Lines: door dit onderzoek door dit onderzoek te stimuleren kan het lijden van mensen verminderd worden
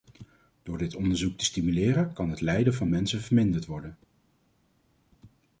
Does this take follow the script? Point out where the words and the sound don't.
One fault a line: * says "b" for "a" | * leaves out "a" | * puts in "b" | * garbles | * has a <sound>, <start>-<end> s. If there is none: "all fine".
* leaves out "door dit onderzoek"